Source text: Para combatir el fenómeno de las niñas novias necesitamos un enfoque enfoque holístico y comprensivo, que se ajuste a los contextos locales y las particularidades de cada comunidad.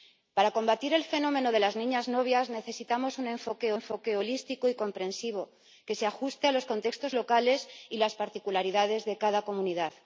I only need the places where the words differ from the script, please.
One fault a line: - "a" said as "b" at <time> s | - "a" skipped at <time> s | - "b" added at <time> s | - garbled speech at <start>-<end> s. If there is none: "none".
none